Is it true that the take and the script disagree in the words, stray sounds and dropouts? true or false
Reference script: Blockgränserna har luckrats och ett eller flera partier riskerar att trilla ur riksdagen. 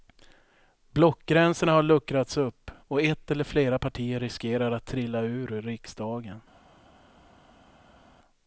true